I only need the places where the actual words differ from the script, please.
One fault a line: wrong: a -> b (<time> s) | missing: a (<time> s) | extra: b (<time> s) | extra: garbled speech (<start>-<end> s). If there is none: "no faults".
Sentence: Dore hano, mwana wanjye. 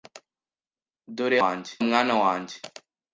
wrong: hano -> wanjye (1.4 s)